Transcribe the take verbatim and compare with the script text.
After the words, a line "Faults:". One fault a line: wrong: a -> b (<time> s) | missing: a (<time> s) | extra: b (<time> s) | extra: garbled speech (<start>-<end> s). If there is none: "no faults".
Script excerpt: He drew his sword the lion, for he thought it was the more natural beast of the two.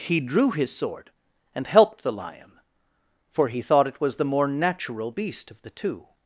He drew his sword and helped the lion, for he thought it was the more natural beast of the two.
Faults:
extra: and helped (1.5 s)